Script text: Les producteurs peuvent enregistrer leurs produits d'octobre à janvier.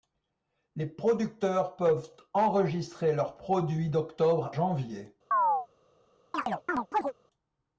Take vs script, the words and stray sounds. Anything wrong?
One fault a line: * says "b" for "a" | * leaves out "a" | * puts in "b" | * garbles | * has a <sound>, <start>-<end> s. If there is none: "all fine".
* leaves out "à"
* has a chirp, 5.3-5.7 s
* has a chirp, 6.3-7.1 s